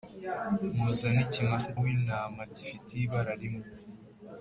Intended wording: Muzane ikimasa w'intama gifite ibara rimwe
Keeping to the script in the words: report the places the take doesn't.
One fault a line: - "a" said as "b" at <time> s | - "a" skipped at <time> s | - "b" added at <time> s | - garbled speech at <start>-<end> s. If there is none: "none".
none